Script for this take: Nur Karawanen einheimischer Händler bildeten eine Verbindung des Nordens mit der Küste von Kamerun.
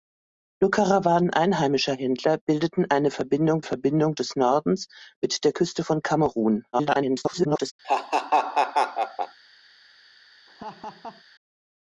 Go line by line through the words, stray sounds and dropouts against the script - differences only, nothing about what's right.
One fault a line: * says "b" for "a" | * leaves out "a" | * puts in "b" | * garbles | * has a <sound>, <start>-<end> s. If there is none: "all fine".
* puts in "Verbindung"
* garbles
* has a laugh, 7.8-9.4 s
* has a laugh, 10.5-11.2 s